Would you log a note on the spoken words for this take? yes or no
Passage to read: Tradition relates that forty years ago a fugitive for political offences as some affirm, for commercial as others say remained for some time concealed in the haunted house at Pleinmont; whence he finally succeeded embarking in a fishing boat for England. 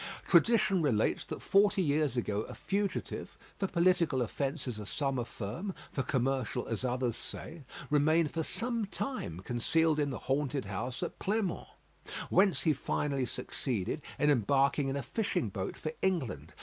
yes